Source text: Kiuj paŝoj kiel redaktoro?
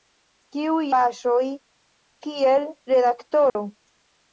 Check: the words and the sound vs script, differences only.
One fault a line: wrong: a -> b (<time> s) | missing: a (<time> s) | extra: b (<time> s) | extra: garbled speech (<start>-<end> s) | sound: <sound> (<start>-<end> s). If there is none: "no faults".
sound: dropout (3.5-3.6 s)